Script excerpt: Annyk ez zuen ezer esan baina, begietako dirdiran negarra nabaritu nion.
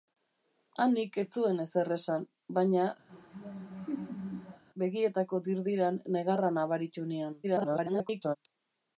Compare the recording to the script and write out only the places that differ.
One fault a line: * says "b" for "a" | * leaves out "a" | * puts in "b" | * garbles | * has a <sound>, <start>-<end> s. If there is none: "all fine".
* has a laugh, 3.1-4.6 s
* garbles